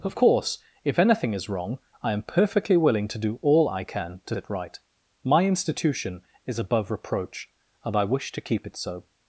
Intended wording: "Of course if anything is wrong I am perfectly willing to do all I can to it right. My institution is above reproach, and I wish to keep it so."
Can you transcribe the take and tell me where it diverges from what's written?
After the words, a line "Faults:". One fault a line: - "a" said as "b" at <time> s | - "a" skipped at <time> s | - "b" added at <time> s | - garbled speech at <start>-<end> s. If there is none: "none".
"Of course if anything is wrong I am perfectly willing to do all I can to it right. My institution is above reproach, and I wish to keep it so."
Faults:
none